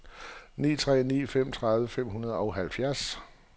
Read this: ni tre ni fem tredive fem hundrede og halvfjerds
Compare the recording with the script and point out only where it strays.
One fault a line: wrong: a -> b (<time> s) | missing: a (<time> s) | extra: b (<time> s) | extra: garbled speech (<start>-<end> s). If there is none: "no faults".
no faults